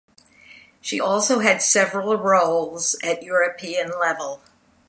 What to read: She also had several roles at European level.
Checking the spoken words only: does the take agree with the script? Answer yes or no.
yes